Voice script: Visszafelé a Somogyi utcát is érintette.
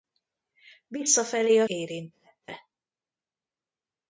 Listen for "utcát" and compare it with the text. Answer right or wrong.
wrong